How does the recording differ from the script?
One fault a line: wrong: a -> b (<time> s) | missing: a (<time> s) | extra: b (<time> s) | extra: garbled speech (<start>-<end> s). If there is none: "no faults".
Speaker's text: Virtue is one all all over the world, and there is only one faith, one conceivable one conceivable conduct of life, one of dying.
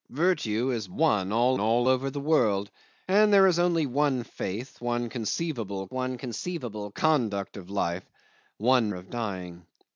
no faults